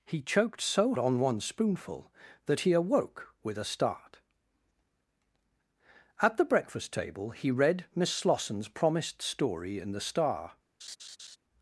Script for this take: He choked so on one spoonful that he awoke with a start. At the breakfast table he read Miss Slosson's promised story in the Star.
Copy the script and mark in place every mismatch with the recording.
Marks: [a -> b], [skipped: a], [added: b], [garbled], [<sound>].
He choked so on one spoonful that he awoke with a start. At the breakfast table he read Miss Slosson's promised story in the Star. [laugh]